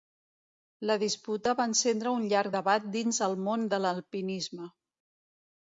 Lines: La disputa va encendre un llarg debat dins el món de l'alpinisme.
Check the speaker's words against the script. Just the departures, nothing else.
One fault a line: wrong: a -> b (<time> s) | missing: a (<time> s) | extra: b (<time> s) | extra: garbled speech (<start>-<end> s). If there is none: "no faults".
no faults